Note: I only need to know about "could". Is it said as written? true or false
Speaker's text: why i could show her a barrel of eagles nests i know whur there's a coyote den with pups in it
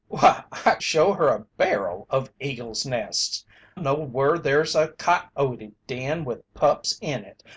false